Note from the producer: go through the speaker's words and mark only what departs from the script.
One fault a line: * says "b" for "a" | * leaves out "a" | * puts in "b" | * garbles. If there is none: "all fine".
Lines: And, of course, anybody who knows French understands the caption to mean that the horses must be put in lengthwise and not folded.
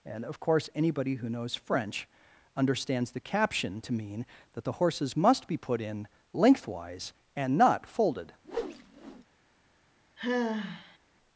all fine